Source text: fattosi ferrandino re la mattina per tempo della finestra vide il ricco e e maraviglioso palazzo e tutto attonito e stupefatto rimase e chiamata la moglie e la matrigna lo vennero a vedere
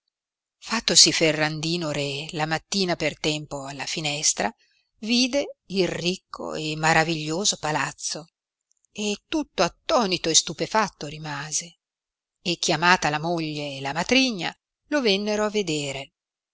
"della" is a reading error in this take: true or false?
true